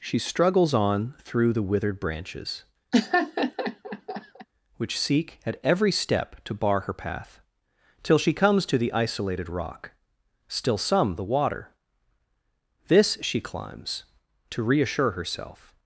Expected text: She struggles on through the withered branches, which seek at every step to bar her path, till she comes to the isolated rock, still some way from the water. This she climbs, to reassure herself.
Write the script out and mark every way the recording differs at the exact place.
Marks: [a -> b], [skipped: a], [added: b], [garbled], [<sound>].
She struggles on through the withered branches, [laugh] which seek at every step to bar her path, till she comes to the isolated rock, still some [skipped: way from] the water. This she climbs, to reassure herself.